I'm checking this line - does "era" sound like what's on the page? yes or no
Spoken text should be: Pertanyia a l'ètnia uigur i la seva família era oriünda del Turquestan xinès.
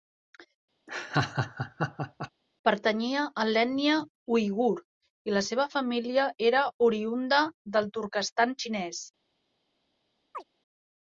yes